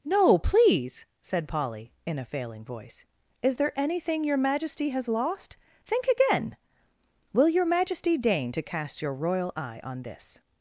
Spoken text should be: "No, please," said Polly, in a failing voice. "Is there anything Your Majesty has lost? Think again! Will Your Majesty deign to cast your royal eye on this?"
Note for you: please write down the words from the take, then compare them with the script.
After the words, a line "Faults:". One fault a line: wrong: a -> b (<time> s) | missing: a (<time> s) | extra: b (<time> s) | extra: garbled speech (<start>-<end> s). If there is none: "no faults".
"No, please," said Polly, in a failing voice. "Is there anything Your Majesty has lost? Think again! Will Your Majesty deign to cast your royal eye on this?"
Faults:
no faults